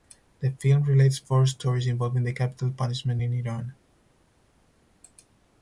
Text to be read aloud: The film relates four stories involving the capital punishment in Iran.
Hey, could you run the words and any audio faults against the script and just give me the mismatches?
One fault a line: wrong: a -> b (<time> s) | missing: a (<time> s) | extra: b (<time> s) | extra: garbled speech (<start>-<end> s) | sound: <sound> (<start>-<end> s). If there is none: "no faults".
no faults